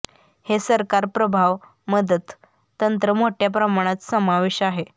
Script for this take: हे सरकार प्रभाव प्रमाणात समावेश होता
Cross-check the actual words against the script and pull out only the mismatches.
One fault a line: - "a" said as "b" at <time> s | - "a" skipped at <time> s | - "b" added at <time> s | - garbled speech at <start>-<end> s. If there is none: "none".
- "मदत तंत्र मोठ्या" added at 1.9 s
- "होता" said as "आहे" at 4.6 s